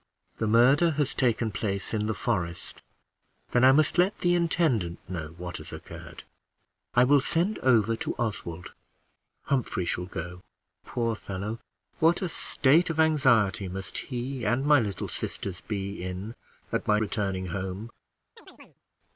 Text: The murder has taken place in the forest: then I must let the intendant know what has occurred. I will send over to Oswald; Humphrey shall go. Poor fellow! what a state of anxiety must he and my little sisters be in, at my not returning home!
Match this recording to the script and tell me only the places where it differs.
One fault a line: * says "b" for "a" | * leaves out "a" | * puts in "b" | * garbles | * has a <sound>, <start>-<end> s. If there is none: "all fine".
* leaves out "not"
* has a chirp, 18.4-18.8 s